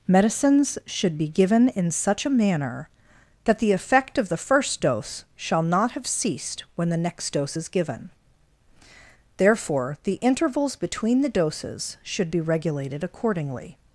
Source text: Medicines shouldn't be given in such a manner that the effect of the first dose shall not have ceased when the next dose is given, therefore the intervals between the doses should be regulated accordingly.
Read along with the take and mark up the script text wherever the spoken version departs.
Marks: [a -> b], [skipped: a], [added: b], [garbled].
Medicines [shouldn't -> should] be given in such a manner that the effect of the first dose shall not have ceased when the next dose is given, therefore the intervals between the doses should be regulated accordingly.